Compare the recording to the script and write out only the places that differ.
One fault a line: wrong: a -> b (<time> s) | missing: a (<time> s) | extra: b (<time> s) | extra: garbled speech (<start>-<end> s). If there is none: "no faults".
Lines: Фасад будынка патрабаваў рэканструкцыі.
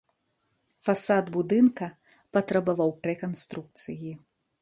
no faults